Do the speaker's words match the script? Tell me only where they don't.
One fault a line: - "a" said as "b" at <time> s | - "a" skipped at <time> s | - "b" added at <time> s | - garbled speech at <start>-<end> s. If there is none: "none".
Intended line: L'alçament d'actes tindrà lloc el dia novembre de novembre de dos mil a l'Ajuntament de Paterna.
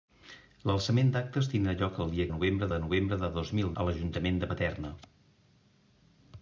none